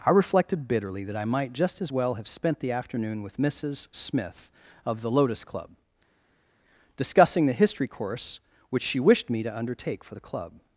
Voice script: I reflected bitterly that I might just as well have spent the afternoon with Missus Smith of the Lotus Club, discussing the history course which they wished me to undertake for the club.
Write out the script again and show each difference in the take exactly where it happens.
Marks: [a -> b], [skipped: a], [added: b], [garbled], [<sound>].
I reflected bitterly that I might just as well have spent the afternoon with Missus Smith of the Lotus Club, discussing the history course which [they -> she] wished me to undertake for the club.